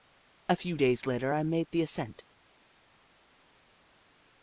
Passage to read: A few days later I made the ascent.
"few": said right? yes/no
yes